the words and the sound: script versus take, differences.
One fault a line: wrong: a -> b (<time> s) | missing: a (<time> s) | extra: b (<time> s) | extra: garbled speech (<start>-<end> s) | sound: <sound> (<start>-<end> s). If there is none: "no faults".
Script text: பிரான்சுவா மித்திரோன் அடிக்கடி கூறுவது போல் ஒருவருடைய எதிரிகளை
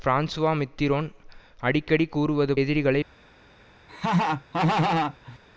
missing: போல் ஒருவருடைய (2.5 s)
sound: laugh (3.9-5.4 s)